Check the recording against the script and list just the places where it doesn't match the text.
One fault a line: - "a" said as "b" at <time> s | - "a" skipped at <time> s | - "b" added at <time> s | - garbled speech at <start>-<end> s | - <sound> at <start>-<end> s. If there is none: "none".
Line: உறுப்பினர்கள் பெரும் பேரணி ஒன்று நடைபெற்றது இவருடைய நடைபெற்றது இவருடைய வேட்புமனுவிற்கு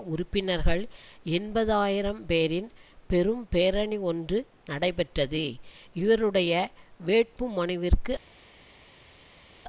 - "எண்பது ஆயிரம் பேரின்" added at 1.3 s
- "நடைபெற்றது இவருடைய" skipped at 6.5 s